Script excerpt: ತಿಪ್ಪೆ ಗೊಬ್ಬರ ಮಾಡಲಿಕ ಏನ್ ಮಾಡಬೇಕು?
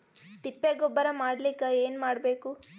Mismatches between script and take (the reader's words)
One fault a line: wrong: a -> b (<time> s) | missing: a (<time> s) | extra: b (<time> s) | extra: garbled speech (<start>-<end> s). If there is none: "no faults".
no faults